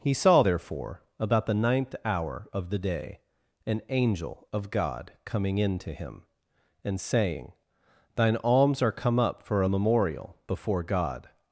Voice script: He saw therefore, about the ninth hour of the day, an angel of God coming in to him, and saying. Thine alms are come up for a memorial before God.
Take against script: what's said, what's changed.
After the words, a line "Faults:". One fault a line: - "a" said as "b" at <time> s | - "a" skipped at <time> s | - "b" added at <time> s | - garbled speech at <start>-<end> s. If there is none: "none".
He saw therefore, about the ninth hour of the day, an angel of God coming in to him, and saying. Thine alms are come up for a memorial before God.
Faults:
none